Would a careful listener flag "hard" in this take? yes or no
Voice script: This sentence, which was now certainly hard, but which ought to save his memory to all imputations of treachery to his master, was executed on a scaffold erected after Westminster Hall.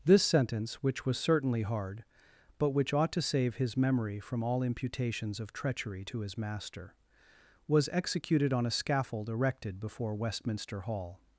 no